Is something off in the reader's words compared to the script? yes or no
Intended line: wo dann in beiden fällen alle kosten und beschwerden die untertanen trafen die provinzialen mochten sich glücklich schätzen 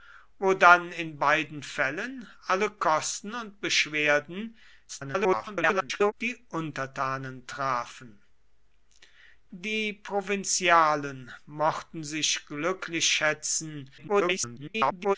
yes